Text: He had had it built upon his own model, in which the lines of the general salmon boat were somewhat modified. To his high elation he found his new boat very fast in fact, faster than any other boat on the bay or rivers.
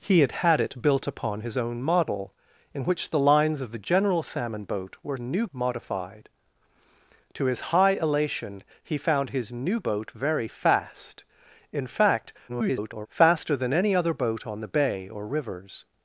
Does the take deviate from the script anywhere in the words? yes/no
yes